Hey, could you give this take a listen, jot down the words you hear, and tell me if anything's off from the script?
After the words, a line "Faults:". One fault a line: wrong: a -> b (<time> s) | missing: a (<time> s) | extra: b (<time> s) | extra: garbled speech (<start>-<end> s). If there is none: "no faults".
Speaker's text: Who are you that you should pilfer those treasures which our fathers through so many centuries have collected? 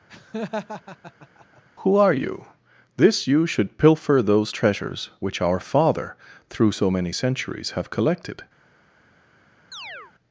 Who are you this you should pilfer those treasures which our father through so many centuries have collected?
Faults:
wrong: that -> this (3.0 s)
wrong: fathers -> father (5.6 s)